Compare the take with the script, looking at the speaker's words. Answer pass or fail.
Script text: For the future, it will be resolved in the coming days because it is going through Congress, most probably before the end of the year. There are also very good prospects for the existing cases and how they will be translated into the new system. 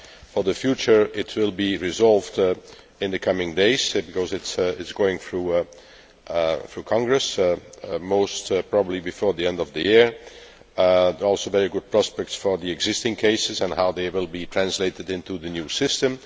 pass